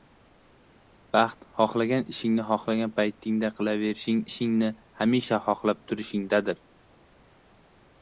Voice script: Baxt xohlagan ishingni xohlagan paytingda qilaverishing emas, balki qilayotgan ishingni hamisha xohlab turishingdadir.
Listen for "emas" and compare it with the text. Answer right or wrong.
wrong